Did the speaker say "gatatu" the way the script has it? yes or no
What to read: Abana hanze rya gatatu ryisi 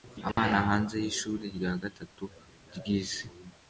yes